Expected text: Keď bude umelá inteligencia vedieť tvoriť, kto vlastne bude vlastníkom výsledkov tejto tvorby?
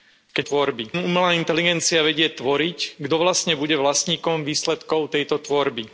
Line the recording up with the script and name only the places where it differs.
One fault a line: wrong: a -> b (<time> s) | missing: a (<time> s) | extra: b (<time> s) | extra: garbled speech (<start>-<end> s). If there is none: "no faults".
wrong: bude -> tvorby (0.4 s)